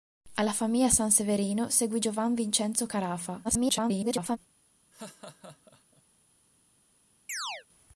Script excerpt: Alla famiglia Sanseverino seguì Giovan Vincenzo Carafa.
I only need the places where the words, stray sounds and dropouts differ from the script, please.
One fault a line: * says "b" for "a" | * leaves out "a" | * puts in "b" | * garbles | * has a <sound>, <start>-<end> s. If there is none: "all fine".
* garbles
* has a laugh, 4.9-6.0 s
* has a chirp, 7.3-7.7 s